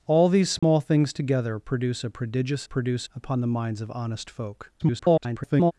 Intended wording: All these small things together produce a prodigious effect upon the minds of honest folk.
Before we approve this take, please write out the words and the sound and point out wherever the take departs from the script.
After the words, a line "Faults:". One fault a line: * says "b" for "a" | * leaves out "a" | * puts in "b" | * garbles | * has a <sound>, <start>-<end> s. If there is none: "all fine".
All these small things together produce a prodigious produce upon the minds of honest folk. [garbled]
Faults:
* has a dropout, 0.6-0.6 s
* says "produce" for "effect"
* garbles